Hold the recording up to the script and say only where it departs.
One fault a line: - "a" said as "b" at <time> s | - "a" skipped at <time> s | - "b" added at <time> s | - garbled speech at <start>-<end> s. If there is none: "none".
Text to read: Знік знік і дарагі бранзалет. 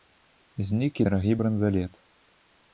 - "знік" skipped at 1.0 s